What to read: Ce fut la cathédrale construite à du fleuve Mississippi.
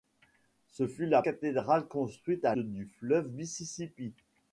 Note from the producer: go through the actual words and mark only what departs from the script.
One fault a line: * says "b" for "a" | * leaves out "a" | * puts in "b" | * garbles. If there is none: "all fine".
all fine